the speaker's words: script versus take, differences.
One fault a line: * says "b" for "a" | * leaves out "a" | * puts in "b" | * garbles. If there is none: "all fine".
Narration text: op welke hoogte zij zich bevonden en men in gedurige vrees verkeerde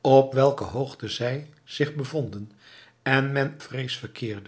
* leaves out "in gedurige"